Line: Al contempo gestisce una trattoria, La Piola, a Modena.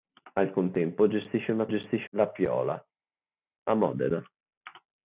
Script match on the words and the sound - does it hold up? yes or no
no